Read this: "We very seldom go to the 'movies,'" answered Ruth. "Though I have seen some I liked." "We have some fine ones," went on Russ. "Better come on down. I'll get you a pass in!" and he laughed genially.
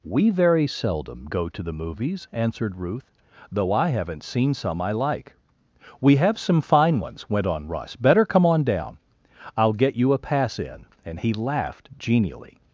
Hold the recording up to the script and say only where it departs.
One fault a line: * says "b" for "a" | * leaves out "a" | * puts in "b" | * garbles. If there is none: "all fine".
* says "haven't" for "have"
* says "like" for "liked"